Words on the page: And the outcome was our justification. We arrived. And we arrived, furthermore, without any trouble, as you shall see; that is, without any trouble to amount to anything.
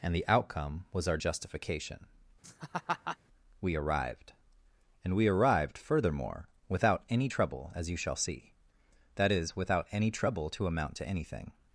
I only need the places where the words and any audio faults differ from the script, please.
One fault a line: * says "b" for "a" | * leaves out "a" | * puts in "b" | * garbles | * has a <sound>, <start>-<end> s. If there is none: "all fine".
* has a laugh, 2.4-3.2 s